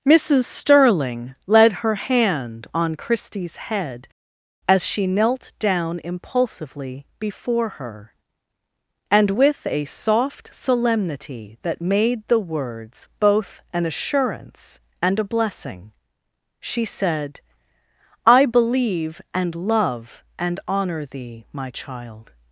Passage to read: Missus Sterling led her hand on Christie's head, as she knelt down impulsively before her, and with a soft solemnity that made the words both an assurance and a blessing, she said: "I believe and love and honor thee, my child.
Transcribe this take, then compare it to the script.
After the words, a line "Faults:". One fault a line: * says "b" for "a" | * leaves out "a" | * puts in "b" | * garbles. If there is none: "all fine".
Missus Sterling led her hand on Christie's head, as she knelt down impulsively before her, and with a soft solemnity that made the words both an assurance and a blessing, she said: "I believe and love and honor thee, my child.
Faults:
all fine